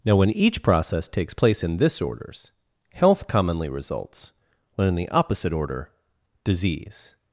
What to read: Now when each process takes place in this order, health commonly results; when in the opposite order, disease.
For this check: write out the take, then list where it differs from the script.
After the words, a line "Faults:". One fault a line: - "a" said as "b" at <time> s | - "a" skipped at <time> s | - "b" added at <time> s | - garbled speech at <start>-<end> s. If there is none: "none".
Now when each process takes place in this orders, health commonly results; when in the opposite order, disease.
Faults:
- "order" said as "orders" at 2.0 s